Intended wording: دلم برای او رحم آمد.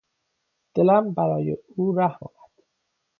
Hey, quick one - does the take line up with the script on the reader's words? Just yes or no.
yes